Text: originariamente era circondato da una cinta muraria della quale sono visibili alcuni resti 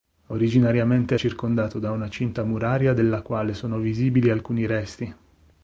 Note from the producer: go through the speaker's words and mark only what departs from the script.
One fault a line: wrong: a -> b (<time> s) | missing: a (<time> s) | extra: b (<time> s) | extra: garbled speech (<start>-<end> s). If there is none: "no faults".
missing: era (1.1 s)